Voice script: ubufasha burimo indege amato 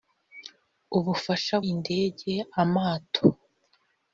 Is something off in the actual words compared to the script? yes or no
yes